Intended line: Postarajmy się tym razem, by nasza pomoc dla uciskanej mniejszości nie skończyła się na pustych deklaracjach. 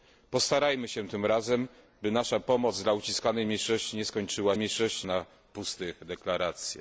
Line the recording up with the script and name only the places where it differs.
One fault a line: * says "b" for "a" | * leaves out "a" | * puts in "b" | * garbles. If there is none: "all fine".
* says "mniejszości" for "się"